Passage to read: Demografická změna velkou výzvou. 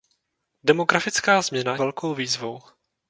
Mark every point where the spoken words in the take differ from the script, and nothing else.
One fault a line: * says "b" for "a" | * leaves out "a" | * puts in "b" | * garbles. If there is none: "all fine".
all fine